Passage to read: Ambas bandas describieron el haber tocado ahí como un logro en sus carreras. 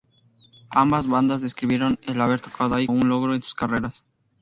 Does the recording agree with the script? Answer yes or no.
no